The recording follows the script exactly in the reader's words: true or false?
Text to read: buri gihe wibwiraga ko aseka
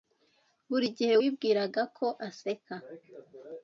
true